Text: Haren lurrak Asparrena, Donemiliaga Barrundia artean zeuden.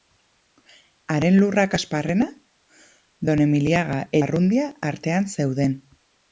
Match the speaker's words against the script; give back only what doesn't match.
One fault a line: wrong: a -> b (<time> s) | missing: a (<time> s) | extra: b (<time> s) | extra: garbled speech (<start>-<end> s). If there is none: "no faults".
no faults